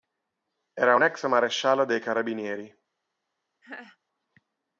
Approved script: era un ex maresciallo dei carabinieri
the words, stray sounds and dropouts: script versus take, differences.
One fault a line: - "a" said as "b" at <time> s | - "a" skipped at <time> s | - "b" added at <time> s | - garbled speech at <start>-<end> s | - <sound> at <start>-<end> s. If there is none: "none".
- laugh at 3.6-4.0 s